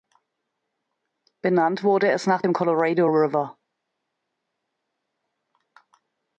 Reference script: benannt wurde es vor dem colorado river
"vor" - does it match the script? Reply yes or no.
no